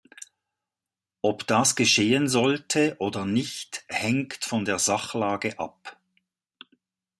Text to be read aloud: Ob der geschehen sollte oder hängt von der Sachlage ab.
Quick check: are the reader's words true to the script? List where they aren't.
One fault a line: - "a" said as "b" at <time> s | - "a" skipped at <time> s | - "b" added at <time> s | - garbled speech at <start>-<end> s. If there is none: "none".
- "der" said as "das" at 1.4 s
- "nicht" added at 3.3 s